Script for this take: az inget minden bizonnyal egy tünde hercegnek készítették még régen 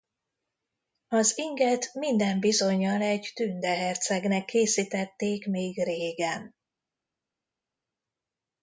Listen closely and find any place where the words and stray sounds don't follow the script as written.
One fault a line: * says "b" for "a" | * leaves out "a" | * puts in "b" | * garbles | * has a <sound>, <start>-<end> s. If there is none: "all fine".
all fine